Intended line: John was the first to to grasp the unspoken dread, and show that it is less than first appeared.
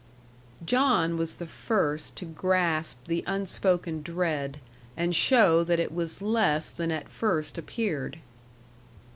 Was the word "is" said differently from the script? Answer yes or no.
yes